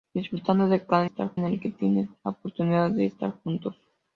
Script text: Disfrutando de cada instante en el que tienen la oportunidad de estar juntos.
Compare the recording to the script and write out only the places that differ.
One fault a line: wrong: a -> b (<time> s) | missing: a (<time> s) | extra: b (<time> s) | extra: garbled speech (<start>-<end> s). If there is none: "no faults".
wrong: instante -> estar (1.0 s)